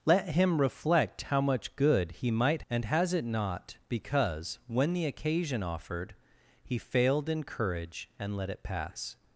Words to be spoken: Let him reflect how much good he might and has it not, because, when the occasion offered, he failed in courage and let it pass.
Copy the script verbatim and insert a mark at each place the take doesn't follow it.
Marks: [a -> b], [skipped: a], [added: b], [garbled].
Let him reflect how much good he might and has it not, because, when the occasion offered, he failed in courage and let it pass.